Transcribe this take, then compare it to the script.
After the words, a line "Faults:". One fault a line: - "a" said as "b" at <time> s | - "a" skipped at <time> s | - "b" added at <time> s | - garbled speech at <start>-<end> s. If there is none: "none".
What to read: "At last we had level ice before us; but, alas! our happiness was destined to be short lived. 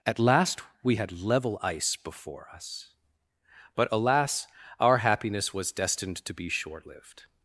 "At last we had level ice before us; but, alas! our happiness was destined to be short lived.
Faults:
none